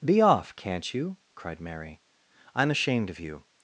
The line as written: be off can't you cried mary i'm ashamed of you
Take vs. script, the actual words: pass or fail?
pass